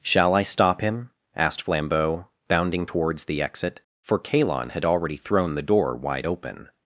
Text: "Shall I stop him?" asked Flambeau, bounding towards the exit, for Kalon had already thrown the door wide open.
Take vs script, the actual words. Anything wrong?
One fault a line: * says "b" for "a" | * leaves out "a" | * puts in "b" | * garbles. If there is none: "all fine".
all fine